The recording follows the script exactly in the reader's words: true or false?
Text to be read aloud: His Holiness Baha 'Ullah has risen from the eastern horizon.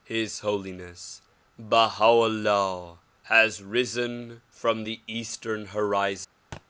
true